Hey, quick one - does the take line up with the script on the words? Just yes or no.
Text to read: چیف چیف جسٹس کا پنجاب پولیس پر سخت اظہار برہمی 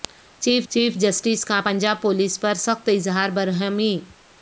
yes